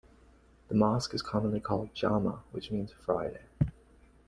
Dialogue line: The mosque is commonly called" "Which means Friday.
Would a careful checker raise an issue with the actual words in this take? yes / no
yes